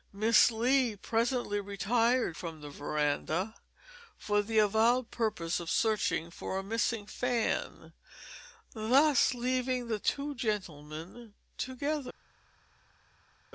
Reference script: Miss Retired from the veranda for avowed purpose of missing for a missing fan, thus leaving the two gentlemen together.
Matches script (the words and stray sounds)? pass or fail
fail